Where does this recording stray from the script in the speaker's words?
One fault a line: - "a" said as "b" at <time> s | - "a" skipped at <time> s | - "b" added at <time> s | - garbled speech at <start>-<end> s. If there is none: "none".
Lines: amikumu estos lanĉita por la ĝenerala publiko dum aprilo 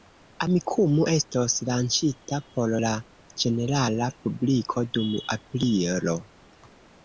none